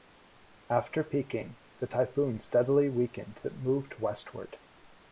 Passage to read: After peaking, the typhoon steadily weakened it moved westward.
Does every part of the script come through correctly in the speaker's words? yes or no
yes